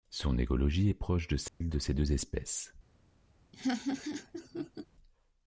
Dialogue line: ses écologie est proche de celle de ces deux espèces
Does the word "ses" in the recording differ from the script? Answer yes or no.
yes